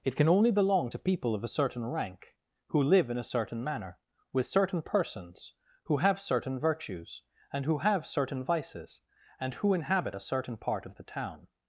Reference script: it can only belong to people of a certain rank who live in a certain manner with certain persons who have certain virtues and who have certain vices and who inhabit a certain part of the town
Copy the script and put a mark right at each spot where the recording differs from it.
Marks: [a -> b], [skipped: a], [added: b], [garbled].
it can only belong to people of a certain rank who live in a certain manner with certain persons who have certain virtues and who have certain vices and who inhabit a certain part of the town